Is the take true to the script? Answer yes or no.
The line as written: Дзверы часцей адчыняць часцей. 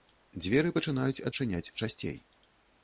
no